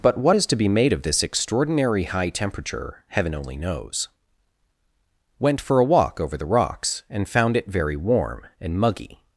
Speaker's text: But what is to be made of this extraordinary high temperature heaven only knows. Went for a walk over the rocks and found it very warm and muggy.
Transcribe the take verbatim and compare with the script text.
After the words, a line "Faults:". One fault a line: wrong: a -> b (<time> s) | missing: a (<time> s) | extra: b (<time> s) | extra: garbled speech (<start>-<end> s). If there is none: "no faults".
But what is to be made of this extraordinary high temperature heaven only knows. Went for a walk over the rocks and found it very warm and muggy.
Faults:
no faults